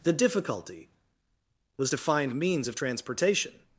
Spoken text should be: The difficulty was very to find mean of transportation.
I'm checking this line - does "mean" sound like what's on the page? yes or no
no